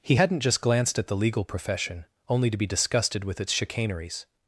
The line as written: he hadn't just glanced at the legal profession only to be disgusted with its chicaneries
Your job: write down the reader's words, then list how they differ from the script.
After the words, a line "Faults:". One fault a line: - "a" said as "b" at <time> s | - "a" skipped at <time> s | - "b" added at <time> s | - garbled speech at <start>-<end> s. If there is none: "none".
he hadn't just glanced at the legal profession only to be disgusted with its chicaneries
Faults:
none